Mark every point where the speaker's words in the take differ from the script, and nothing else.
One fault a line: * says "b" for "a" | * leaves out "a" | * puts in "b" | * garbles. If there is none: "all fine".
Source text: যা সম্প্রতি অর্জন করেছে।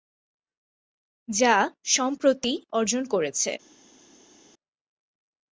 all fine